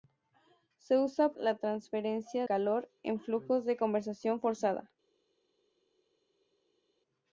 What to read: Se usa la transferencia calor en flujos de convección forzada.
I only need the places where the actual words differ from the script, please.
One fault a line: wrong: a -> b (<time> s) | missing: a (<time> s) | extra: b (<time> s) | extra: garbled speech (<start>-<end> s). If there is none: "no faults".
no faults